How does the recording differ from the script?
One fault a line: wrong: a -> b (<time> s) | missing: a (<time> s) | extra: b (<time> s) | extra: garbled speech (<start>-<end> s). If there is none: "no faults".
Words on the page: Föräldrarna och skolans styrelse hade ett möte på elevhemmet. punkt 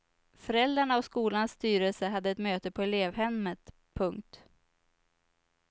no faults